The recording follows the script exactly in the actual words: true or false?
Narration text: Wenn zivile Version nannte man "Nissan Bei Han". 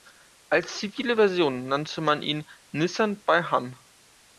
false